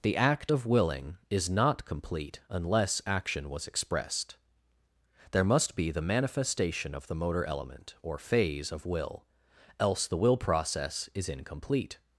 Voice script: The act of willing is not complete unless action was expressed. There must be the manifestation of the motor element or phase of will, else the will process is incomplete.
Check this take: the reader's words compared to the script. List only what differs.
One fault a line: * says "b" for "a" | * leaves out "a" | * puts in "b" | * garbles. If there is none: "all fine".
all fine